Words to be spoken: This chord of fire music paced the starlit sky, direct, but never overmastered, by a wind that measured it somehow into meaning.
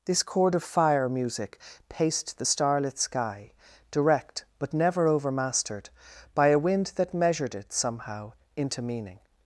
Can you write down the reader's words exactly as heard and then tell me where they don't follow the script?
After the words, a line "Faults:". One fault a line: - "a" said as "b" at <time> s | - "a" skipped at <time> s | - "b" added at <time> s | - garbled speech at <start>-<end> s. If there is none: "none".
This chord of fire music paced the starlit sky, direct, but never overmastered, by a wind that measured it somehow into meaning.
Faults:
none